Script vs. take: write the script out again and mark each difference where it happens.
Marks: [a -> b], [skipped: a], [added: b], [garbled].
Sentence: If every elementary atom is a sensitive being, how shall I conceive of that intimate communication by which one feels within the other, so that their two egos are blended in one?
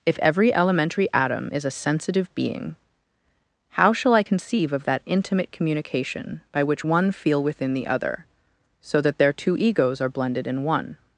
If every elementary atom is a sensitive being, how shall I conceive of that intimate communication by which one [feels -> feel] within the other, so that their two egos are blended in one?